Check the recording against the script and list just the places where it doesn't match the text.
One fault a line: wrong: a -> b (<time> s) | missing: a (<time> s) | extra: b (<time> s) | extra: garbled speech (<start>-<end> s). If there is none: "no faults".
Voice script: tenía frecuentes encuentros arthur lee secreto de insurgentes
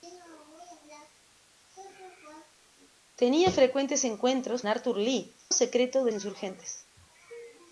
no faults